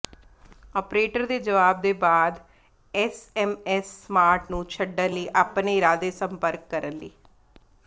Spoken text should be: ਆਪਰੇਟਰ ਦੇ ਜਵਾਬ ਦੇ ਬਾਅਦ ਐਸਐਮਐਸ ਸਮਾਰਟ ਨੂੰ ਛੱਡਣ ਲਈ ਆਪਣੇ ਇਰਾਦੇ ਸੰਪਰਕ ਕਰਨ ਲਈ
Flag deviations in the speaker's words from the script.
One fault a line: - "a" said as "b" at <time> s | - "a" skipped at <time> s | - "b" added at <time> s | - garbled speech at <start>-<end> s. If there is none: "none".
none